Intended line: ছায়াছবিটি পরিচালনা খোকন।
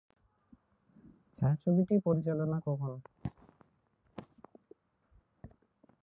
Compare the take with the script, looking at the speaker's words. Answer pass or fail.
pass